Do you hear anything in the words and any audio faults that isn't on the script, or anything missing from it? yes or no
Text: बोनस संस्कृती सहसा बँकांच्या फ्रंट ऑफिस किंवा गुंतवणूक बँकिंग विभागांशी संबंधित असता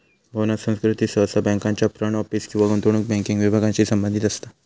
no